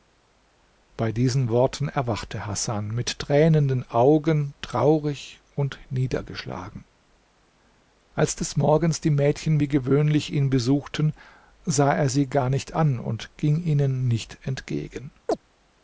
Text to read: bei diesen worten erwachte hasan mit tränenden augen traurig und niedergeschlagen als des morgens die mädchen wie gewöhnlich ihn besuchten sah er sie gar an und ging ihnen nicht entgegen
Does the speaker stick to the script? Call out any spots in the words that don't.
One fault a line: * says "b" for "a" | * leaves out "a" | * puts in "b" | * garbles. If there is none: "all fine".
* puts in "nicht"